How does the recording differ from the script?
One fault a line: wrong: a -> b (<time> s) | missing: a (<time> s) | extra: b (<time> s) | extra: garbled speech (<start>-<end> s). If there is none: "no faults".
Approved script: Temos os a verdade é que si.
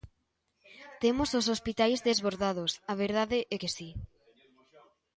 extra: hospitais desbordados (1.5 s)